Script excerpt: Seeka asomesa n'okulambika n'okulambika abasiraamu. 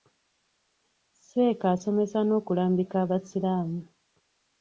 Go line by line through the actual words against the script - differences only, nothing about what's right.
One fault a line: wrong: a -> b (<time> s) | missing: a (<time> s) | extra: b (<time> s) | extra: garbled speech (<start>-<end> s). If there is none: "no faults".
missing: n'okulambika (3.0 s)